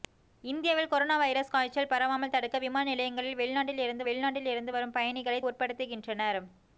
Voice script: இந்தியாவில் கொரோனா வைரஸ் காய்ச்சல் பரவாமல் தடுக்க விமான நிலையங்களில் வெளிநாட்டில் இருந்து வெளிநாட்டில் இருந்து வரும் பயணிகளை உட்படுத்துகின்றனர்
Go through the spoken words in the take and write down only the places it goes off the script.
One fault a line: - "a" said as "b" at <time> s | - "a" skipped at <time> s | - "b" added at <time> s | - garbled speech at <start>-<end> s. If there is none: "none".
none